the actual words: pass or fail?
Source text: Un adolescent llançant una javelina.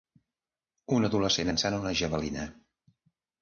pass